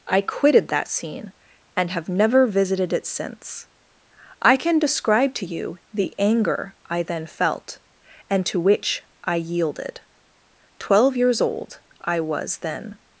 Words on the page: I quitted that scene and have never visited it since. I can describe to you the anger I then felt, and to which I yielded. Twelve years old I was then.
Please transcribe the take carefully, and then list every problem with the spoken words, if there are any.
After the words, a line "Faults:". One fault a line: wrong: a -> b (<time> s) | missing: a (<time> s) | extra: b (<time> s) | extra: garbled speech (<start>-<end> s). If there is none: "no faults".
I quitted that scene and have never visited it since. I can describe to you the anger I then felt, and to which I yielded. Twelve years old I was then.
Faults:
no faults